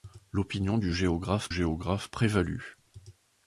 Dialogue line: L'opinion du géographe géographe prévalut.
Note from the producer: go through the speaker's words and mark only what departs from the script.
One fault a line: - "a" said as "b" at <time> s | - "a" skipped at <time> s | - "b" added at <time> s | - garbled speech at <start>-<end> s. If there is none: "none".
none